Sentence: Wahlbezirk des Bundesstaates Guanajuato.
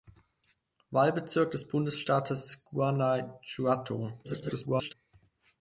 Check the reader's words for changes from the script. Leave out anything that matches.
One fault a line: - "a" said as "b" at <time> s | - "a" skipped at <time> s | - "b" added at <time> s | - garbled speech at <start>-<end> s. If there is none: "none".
- garbled speech at 4.2-4.9 s